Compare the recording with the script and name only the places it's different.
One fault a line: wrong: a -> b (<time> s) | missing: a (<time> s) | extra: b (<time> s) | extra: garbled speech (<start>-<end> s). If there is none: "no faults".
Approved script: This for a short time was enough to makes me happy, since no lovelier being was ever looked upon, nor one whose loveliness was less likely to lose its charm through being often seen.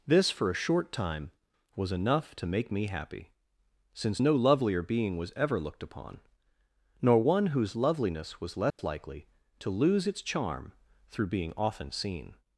wrong: makes -> make (2.5 s)